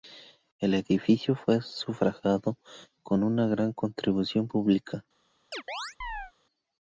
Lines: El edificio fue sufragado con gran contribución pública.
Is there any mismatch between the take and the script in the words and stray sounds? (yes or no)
yes